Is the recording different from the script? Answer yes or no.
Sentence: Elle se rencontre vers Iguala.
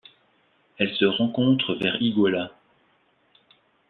no